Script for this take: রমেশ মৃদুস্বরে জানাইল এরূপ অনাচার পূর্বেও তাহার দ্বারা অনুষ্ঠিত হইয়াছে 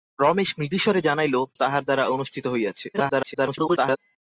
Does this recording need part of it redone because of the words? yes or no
yes